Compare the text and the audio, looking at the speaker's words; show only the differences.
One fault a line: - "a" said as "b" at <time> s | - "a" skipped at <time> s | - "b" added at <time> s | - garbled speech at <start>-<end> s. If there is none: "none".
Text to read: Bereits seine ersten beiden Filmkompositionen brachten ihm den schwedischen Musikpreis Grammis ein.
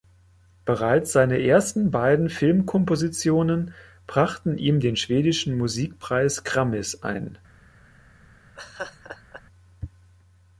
none